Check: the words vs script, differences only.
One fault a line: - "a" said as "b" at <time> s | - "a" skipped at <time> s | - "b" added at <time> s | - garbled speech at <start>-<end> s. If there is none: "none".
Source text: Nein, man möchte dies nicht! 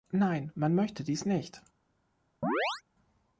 none